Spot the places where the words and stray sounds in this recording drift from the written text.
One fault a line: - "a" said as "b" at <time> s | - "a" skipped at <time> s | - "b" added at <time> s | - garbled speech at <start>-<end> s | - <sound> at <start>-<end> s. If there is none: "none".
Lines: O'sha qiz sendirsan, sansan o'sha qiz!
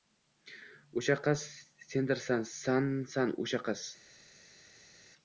none